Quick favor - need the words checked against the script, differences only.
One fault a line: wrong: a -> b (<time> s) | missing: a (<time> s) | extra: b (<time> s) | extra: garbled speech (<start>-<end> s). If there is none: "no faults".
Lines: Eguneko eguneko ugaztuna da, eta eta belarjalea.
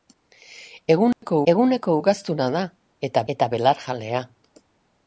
no faults